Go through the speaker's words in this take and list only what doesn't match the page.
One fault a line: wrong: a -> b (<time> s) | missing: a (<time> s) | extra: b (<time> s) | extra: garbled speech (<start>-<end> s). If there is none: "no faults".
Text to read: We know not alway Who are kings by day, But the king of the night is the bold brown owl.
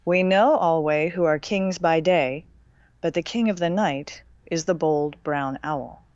missing: not (0.6 s)